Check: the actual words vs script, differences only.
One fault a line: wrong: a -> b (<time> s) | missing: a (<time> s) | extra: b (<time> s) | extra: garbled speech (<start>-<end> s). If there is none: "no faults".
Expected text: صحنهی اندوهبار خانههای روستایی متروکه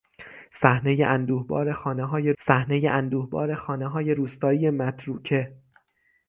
extra: صحنهی اندوهبار خانههای (2.4 s)